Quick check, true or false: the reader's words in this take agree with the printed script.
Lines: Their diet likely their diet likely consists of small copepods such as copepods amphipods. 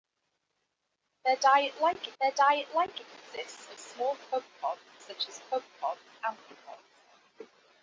true